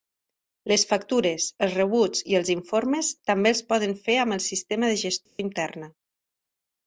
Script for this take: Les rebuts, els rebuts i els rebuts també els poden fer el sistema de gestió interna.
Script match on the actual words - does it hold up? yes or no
no